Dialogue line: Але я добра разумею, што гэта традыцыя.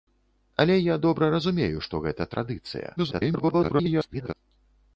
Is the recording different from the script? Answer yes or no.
yes